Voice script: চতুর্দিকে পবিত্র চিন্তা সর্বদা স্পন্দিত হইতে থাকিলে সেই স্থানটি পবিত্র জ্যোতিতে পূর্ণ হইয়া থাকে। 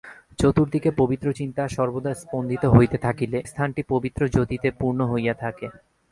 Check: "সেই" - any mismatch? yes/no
yes